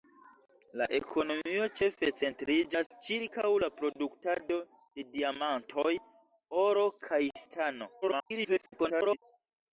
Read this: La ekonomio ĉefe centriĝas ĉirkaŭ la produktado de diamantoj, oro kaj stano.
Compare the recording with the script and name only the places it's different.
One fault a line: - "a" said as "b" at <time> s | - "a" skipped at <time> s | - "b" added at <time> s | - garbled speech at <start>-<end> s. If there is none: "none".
- garbled speech at 8.0-9.2 s